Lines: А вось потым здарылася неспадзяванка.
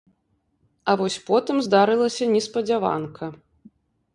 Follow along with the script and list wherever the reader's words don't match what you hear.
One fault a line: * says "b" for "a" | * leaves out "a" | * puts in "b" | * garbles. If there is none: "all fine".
all fine